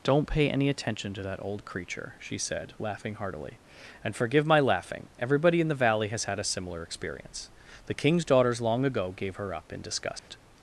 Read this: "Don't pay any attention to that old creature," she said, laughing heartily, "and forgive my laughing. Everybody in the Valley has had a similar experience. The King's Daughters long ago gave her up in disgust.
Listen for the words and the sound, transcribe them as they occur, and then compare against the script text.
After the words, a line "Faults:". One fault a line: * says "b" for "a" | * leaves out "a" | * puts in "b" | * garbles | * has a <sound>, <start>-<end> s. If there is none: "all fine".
"Don't pay any attention to that old creature," she said, laughing heartily, "and forgive my laughing. Everybody in the Valley has had a similar experience. The King's Daughters long ago gave her up in disgust.
Faults:
* has a dropout, 10.2-10.3 s